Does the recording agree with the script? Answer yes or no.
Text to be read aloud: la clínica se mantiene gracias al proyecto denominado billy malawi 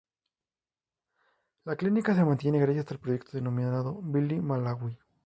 yes